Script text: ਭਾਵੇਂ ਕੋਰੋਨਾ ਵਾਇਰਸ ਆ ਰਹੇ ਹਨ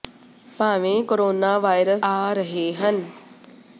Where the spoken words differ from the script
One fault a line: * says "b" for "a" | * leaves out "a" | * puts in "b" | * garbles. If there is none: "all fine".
all fine